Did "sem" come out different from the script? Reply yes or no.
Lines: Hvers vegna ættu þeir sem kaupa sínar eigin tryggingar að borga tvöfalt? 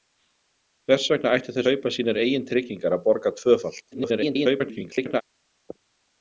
yes